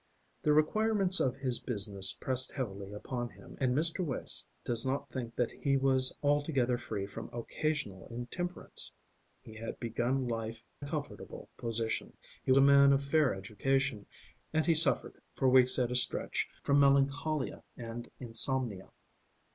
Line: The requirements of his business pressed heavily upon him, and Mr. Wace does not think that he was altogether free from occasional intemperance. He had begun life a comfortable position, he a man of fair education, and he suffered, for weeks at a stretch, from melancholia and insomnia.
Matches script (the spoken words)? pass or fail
pass